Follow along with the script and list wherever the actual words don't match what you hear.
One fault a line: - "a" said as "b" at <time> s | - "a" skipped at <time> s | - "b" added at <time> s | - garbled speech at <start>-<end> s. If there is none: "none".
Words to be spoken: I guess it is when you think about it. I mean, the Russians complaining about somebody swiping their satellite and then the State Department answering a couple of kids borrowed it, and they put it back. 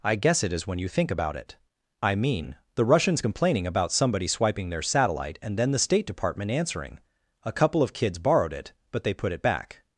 - "and" said as "but" at 8.9 s